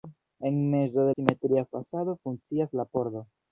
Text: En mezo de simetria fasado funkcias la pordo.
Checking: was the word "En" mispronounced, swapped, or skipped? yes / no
no